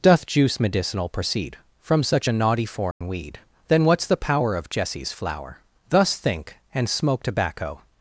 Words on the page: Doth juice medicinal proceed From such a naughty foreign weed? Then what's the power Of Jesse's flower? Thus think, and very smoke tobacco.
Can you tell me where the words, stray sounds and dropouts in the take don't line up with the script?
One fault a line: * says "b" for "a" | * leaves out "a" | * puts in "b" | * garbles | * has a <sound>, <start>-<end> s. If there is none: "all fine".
* has a dropout, 2.9-3.0 s
* leaves out "very"